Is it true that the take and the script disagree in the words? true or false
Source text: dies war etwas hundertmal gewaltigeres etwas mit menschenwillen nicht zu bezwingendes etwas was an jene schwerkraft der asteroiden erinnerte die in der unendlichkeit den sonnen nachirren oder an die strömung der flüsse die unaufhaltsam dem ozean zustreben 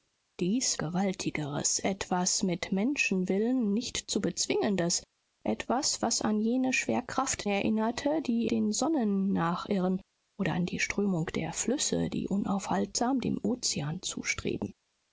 true